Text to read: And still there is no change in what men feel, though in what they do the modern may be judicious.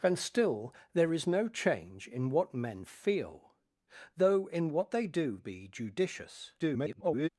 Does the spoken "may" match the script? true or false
false